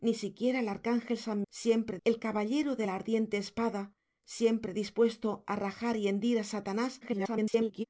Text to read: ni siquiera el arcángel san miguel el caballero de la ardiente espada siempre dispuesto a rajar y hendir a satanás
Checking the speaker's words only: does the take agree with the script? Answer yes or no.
no